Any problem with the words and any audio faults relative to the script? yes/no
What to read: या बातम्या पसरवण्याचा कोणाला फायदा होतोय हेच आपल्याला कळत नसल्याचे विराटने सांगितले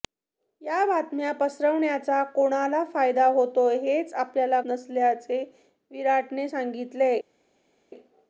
yes